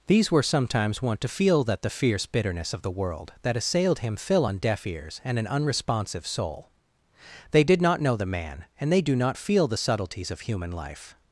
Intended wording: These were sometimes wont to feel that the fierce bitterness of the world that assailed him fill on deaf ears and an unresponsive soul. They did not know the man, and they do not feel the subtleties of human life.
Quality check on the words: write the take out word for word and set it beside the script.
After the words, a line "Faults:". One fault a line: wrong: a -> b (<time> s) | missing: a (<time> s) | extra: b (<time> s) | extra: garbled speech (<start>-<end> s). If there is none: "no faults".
These were sometimes wont to feel that the fierce bitterness of the world that assailed him fill on deaf ears and an unresponsive soul. They did not know the man, and they do not feel the subtleties of human life.
Faults:
no faults